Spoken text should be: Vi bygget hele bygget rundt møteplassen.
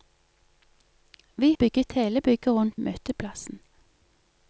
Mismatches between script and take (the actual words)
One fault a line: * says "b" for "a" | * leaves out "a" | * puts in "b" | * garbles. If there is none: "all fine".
all fine